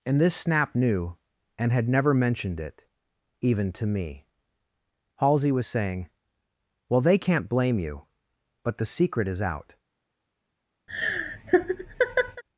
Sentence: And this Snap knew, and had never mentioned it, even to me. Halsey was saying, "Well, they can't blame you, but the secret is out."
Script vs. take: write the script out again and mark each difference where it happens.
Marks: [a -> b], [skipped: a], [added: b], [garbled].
And this Snap knew, and had never mentioned it, even to me. Halsey was saying, "Well, they can't blame you, but the secret is out."